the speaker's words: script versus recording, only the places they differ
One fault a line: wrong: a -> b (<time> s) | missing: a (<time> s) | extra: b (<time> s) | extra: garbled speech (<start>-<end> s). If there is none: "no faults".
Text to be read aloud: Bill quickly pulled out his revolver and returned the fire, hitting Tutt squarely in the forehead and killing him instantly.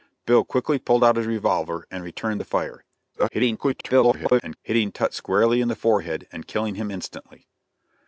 extra: garbled speech (3.1-4.6 s)